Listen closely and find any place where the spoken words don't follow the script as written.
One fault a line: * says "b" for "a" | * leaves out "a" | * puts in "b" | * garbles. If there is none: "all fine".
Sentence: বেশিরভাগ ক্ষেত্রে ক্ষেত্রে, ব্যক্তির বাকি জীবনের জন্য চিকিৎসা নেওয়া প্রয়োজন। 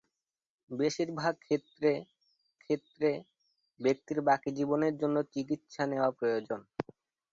all fine